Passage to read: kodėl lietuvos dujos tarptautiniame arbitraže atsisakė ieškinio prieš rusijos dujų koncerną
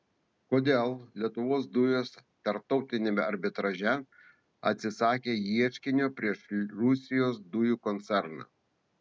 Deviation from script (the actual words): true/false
false